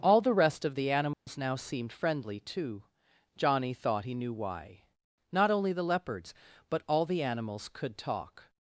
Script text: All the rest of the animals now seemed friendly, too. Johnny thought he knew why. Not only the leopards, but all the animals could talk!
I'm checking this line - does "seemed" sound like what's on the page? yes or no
yes